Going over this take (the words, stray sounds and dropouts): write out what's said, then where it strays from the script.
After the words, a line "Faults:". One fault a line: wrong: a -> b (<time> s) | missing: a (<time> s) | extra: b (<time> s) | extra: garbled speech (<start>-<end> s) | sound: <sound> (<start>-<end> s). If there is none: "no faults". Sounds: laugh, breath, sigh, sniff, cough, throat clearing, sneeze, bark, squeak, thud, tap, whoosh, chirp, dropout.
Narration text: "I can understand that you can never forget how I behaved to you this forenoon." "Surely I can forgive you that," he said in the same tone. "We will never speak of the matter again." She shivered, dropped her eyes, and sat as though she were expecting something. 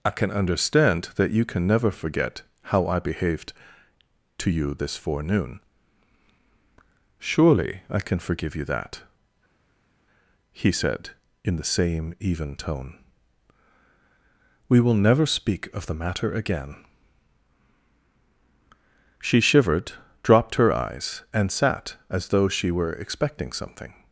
"I can understand that you can never forget how I behaved to you this forenoon." "Surely I can forgive you that," he said in the same even tone. "We will never speak of the matter again." She shivered, dropped her eyes, and sat as though she were expecting something.
Faults:
extra: even (12.2 s)